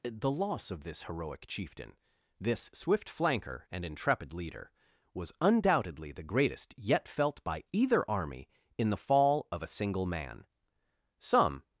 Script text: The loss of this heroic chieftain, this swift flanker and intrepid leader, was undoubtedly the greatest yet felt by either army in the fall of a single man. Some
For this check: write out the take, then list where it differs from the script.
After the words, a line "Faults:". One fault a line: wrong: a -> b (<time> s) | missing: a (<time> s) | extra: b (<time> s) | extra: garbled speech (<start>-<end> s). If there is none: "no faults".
The loss of this heroic chieftain, this swift flanker and intrepid leader, was undoubtedly the greatest yet felt by either army in the fall of a single man. Some
Faults:
no faults